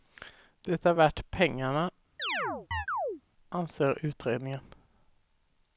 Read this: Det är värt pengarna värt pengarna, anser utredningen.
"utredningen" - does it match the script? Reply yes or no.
yes